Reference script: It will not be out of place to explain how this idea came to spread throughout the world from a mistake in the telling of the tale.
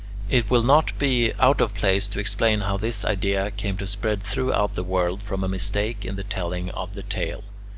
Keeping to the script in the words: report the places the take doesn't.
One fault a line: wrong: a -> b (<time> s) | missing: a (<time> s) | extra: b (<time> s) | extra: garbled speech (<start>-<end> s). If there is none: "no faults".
no faults